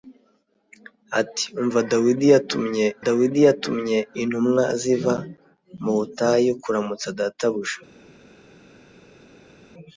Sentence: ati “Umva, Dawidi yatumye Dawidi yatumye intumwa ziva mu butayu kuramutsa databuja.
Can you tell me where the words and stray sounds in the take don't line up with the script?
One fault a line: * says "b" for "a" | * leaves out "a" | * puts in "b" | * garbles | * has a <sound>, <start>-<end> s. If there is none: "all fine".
all fine